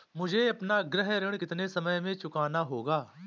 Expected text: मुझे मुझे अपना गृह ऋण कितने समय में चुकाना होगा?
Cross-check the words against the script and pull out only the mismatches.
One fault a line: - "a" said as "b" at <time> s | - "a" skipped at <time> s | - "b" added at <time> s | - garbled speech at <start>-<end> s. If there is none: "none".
- "मुझे" skipped at 0.5 s